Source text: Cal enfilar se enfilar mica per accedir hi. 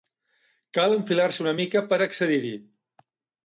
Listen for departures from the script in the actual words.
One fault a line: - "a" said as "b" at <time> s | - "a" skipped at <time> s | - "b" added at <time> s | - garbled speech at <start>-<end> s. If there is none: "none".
- "enfilar" said as "una" at 1.4 s